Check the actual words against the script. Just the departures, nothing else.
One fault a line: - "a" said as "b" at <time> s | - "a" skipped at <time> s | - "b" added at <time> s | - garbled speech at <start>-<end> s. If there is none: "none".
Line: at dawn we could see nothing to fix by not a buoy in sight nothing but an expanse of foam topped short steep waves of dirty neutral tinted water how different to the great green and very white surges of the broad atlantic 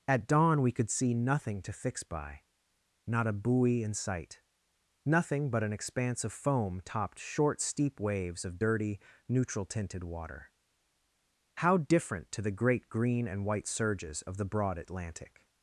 - "very" skipped at 13.4 s